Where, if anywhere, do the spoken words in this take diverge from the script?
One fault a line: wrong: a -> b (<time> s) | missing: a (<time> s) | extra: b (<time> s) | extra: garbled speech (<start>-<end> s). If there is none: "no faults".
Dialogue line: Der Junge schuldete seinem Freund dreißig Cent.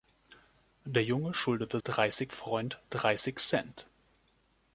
wrong: seinem -> dreißig (1.8 s)